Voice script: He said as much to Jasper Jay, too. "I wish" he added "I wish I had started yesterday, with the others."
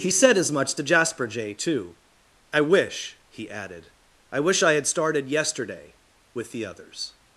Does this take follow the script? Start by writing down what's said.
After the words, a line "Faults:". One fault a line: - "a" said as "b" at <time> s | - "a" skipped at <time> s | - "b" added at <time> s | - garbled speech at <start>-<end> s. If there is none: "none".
He said as much to Jasper Jay, too. "I wish" he added "I wish I had started yesterday, with the others."
Faults:
none